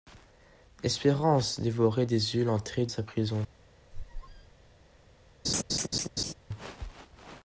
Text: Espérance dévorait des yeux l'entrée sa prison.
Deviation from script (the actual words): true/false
false